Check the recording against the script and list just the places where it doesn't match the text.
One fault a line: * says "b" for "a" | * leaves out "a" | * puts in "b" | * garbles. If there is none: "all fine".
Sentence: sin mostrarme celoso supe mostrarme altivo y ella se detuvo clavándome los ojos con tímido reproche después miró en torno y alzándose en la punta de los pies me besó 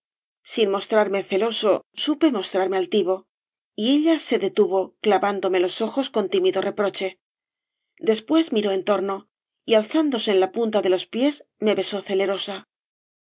all fine